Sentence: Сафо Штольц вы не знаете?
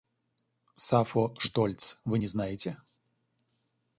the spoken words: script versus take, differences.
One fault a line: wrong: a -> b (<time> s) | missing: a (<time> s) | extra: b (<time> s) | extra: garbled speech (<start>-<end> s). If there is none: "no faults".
no faults